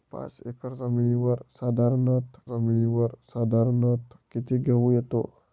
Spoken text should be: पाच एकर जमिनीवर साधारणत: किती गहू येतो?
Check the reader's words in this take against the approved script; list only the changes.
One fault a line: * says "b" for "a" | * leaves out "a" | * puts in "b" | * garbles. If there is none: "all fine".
* puts in "जमिनीवर साधारणत"